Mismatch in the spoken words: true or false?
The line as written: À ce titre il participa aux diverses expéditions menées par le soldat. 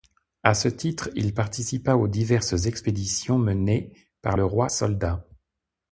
true